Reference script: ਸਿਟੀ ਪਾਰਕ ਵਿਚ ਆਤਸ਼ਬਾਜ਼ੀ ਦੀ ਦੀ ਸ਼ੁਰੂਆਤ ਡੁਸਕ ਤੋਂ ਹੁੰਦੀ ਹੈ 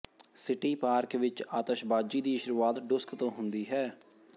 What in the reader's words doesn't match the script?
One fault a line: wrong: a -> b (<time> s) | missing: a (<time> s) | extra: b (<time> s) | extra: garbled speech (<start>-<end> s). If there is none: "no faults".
missing: ਦੀ (2.4 s)